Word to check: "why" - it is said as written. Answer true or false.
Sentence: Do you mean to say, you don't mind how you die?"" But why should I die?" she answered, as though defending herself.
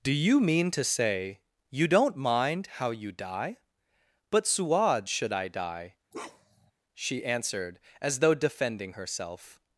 false